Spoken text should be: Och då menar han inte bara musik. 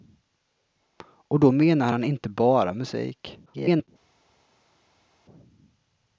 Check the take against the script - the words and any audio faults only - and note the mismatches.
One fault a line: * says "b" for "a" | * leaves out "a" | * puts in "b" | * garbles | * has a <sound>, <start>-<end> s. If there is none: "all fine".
* garbles